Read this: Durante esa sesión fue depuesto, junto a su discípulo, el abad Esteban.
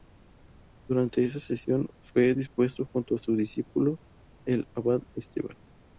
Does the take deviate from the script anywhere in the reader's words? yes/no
no